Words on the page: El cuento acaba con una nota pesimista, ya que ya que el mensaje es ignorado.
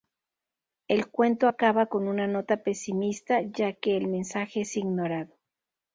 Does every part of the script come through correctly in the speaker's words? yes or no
no